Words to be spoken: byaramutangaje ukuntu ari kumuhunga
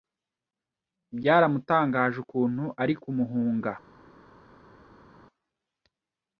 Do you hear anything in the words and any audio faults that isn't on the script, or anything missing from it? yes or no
no